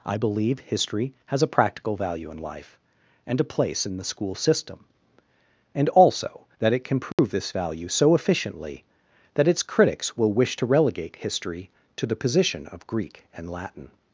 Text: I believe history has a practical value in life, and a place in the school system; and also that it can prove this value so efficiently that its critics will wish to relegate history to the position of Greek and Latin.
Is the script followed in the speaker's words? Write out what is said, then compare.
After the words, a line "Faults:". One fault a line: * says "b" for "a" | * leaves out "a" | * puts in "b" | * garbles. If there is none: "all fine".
I believe history has a practical value in life, and a place in the school system; and also that it can prove this value so efficiently that its critics will wish to relegate history to the position of Greek and Latin.
Faults:
all fine